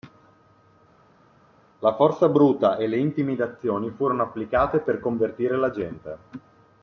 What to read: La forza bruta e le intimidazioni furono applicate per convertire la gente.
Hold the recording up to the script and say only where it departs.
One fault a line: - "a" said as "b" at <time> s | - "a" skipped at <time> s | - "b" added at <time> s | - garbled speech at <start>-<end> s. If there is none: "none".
none